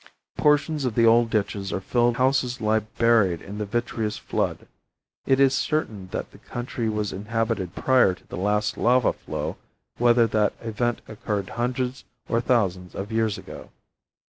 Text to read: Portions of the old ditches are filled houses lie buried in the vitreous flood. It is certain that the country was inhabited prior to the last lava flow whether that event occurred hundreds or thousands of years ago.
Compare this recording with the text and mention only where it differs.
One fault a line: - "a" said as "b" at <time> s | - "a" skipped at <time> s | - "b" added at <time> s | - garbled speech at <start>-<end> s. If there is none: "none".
none